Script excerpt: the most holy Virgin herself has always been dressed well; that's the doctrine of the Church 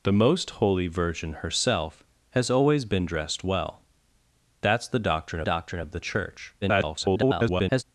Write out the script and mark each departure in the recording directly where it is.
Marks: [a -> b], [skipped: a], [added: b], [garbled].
the most holy Virgin herself has always been dressed well; that's the doctrine [added: doctrine] of the Church [garbled]